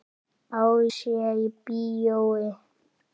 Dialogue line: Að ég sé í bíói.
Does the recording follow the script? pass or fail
fail